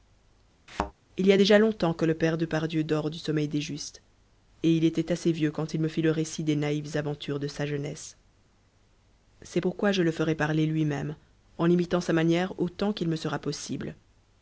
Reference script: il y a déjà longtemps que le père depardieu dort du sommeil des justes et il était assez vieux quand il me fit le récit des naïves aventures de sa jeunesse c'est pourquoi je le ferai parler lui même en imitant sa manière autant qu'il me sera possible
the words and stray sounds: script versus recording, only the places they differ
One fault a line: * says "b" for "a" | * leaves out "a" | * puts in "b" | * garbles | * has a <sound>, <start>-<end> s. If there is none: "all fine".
* has a thud, 0.7-0.9 s